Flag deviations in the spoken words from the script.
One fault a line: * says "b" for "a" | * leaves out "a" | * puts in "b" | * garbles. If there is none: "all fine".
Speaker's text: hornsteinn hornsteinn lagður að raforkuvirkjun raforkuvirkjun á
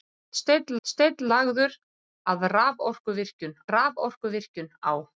all fine